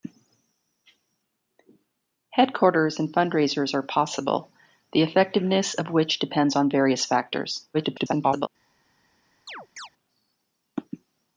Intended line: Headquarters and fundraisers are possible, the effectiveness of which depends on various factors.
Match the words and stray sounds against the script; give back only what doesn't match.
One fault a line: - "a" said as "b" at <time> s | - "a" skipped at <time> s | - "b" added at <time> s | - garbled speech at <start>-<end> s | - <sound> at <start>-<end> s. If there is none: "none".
- garbled speech at 7.7-8.5 s
- chirp at 9.5-9.9 s